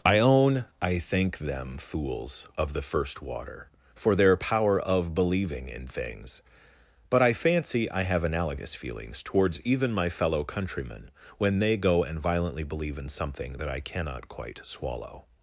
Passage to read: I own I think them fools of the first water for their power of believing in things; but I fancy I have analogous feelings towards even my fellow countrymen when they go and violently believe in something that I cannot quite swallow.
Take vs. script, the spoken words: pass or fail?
pass